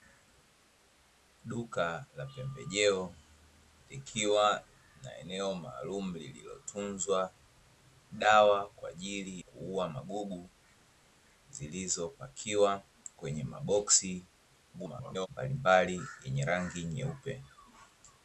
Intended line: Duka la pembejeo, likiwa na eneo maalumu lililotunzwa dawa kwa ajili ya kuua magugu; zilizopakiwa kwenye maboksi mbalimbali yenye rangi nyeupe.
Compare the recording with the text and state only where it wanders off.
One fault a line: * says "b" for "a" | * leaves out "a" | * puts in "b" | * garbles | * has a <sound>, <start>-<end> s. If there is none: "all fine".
* leaves out "ya"
* garbles